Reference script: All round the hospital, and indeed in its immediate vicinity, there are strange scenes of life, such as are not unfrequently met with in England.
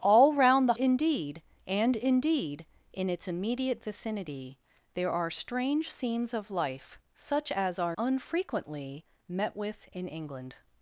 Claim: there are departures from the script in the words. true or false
true